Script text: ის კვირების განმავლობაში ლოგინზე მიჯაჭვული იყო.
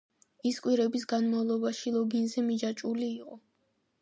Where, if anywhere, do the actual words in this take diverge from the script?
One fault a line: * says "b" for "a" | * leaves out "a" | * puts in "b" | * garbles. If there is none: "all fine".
all fine